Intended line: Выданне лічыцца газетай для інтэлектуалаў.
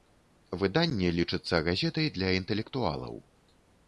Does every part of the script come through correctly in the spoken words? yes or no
yes